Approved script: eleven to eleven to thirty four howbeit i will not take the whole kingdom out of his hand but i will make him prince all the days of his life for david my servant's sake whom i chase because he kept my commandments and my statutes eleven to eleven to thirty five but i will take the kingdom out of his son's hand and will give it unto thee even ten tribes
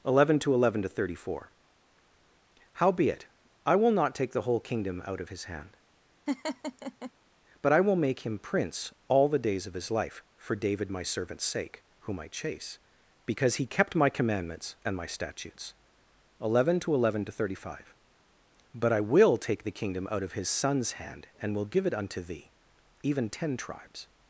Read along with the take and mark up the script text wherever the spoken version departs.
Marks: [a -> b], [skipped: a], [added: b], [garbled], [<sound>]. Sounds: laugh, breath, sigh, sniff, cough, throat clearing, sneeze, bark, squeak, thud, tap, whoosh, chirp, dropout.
eleven to eleven to thirty four howbeit i will not take the whole kingdom out of his hand [laugh] but i will make him prince all the days of his life for david my servant's sake whom i chase because he kept my commandments and my statutes eleven to eleven to thirty five but i will take the kingdom out of his son's hand and will give it unto thee even ten tribes